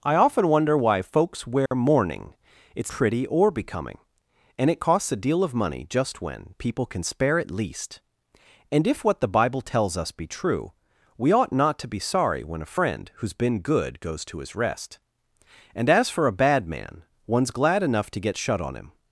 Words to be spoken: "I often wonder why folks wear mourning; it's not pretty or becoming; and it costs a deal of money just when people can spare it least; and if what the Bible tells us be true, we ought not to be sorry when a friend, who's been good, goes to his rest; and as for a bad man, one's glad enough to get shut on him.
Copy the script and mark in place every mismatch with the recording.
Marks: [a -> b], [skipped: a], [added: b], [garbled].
"I often wonder why folks wear mourning; it's [skipped: not] pretty or becoming; and it costs a deal of money just when people can spare it least; and if what the Bible tells us be true, we ought not to be sorry when a friend, who's been good, goes to his rest; and as for a bad man, one's glad enough to get shut on him.